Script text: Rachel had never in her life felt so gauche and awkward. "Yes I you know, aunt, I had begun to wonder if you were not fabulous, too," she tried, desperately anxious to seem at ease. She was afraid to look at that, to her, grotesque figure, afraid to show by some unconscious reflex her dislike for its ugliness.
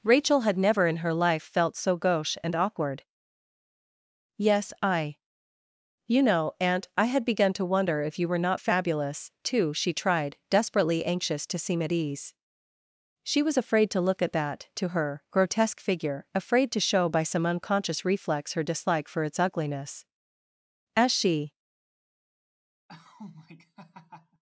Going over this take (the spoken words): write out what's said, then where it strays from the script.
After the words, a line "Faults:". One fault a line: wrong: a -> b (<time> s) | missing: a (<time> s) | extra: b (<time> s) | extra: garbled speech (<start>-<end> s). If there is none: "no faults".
Rachel had never in her life felt so gauche and awkward. "Yes I you know, aunt, I had begun to wonder if you were not fabulous, too," she tried, desperately anxious to seem at ease. She was afraid to look at that, to her, grotesque figure, afraid to show by some unconscious reflex her dislike for its ugliness. As she
Faults:
extra: As she (21.0 s)